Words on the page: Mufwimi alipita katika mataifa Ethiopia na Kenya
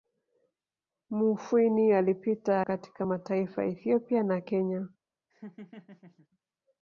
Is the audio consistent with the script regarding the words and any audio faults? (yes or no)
no